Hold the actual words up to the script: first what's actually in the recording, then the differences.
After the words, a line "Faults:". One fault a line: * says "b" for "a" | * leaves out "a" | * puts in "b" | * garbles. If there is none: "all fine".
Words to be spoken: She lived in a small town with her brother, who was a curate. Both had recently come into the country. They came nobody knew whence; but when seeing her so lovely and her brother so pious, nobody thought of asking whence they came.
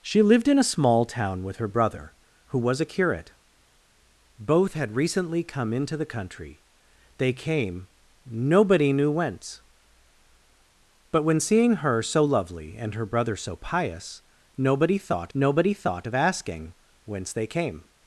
She lived in a small town with her brother, who was a curate. Both had recently come into the country. They came nobody knew whence; but when seeing her so lovely and her brother so pious, nobody thought nobody thought of asking whence they came.
Faults:
* puts in "nobody thought"